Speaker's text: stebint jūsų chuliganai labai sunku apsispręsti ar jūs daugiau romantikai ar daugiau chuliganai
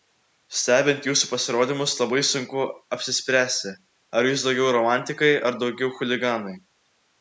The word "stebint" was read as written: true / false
true